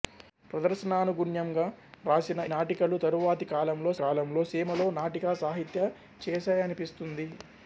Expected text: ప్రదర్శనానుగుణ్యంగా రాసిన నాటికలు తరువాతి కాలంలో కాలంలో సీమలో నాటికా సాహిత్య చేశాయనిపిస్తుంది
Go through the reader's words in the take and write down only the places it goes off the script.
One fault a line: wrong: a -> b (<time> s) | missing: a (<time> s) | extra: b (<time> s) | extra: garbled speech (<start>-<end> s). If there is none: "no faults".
no faults